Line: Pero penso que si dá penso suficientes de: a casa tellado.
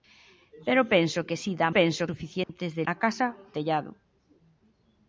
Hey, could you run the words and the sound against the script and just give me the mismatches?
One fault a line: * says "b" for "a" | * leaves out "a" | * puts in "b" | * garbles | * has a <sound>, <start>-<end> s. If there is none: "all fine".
* has a dropout, 2.4-2.5 s